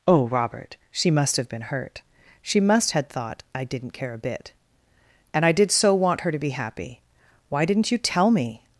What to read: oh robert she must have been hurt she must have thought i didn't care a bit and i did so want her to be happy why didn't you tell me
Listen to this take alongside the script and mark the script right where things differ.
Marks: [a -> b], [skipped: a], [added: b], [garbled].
oh robert she must have been hurt she must [have -> had] thought i didn't care a bit and i did so want her to be happy why didn't you tell me